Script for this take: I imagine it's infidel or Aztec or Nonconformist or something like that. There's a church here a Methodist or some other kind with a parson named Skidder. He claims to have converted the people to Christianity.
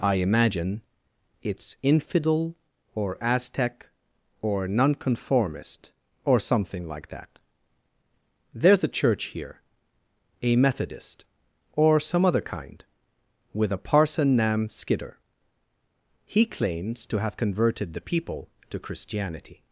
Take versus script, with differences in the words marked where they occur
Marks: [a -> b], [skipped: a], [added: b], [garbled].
I imagine it's infidel or Aztec or Nonconformist or something like that. There's a church here a Methodist or some other kind with a parson [named -> nam] Skidder. He claims to have converted the people to Christianity.